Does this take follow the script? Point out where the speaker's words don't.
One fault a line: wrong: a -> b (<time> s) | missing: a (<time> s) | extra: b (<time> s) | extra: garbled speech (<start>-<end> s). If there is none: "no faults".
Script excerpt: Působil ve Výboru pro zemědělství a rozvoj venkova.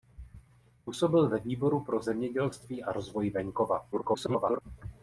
extra: garbled speech (3.9-4.6 s)